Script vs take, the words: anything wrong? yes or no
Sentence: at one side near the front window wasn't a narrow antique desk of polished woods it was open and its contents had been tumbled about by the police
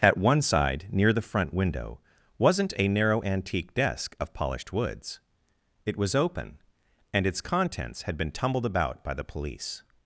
no